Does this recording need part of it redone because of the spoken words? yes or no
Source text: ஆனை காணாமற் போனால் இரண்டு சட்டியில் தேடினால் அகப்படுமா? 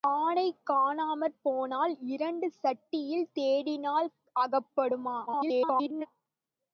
yes